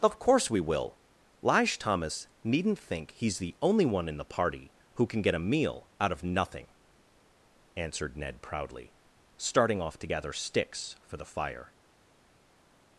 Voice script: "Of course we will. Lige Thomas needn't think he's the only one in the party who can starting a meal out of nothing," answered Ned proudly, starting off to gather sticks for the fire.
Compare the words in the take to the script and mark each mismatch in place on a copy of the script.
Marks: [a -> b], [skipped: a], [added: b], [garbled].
"Of course we will. Lige Thomas needn't think he's the only one in the party who can [starting -> get] a meal out of nothing," answered Ned proudly, starting off to gather sticks for the fire.